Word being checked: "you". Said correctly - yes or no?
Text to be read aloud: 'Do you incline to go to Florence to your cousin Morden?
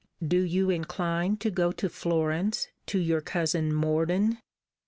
yes